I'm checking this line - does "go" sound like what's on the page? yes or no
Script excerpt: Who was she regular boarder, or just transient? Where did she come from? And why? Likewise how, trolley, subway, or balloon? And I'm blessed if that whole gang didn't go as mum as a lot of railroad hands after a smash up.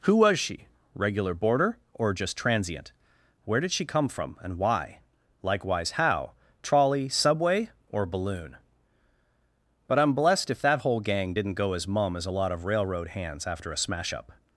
yes